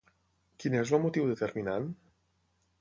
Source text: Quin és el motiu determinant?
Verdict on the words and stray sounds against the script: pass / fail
pass